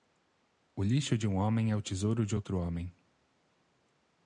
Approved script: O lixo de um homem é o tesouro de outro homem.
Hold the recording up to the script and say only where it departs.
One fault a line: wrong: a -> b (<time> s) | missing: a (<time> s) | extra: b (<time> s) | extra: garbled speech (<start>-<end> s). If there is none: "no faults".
no faults